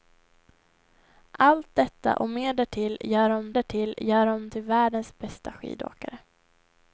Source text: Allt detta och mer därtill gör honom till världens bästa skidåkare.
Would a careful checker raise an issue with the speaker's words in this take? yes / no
yes